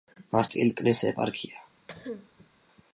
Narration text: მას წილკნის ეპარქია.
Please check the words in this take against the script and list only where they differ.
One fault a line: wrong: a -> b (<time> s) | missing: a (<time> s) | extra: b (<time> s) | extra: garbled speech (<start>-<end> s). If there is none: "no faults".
no faults